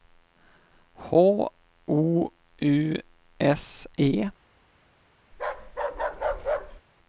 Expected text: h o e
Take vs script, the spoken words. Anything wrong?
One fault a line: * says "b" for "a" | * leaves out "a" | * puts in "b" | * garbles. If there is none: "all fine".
* puts in "u s"